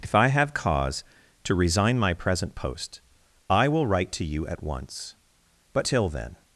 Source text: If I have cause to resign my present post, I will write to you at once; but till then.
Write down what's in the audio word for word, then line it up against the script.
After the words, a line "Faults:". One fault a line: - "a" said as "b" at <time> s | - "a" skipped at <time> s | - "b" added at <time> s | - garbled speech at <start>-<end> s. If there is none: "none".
If I have cause to resign my present post, I will write to you at once; but till then.
Faults:
none